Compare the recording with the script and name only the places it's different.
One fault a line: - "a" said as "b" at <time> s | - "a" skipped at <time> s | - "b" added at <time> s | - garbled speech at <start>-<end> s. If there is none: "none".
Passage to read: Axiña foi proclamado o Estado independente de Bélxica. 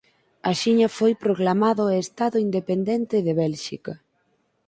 none